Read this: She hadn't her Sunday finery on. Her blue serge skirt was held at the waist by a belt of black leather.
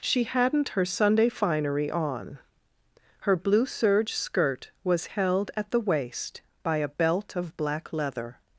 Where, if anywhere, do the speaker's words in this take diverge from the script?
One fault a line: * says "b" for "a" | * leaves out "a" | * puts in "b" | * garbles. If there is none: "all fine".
all fine